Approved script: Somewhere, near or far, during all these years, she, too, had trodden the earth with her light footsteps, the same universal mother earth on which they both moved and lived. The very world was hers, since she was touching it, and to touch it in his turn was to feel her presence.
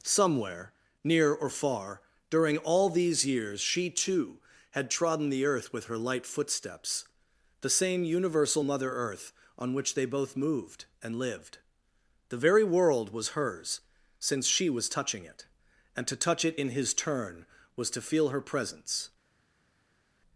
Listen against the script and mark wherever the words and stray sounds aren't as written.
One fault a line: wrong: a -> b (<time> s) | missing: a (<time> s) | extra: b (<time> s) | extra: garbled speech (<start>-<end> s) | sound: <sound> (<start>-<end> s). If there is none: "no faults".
no faults